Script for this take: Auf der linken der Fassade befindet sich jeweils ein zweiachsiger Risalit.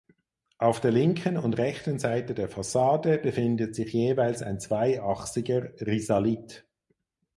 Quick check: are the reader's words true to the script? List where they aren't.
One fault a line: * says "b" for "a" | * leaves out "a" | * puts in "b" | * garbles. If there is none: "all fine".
* puts in "und rechten Seite"